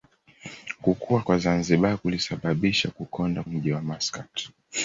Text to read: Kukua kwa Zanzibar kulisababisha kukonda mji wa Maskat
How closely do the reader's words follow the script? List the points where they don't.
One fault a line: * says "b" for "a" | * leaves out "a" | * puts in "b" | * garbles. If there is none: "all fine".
all fine